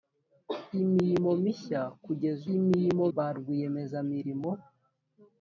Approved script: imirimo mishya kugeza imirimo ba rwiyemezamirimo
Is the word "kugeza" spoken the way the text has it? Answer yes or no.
yes